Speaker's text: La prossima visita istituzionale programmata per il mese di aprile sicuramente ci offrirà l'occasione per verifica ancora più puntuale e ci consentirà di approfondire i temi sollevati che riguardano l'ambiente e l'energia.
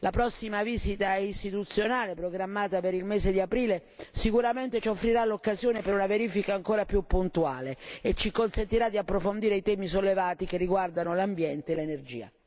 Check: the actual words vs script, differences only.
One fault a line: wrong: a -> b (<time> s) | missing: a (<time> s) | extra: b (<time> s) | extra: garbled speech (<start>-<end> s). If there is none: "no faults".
extra: una (5.9 s)